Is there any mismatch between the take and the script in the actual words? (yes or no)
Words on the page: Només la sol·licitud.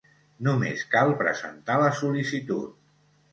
yes